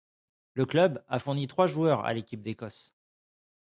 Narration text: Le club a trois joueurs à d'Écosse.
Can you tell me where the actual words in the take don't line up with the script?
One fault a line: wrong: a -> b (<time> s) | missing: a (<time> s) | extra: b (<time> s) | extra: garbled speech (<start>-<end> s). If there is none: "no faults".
extra: fourni (1.2 s)
extra: l'Équipe (2.1 s)